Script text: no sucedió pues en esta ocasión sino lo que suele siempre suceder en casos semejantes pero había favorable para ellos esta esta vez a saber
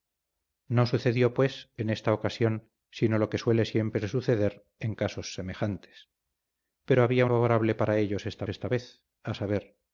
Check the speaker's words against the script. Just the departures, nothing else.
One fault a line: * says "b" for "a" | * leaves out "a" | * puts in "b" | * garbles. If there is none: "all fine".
all fine